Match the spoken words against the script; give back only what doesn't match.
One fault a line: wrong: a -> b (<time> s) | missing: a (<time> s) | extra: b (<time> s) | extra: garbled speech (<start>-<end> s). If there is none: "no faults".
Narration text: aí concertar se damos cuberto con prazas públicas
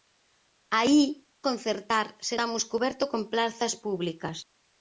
no faults